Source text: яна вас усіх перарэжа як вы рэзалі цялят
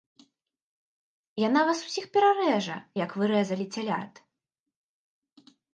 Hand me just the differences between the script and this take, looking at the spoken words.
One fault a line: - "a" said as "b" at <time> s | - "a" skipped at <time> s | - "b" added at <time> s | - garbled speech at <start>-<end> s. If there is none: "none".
none